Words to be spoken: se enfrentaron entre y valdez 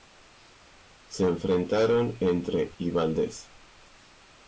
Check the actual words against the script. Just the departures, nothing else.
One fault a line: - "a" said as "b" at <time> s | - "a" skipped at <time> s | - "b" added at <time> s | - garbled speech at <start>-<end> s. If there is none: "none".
none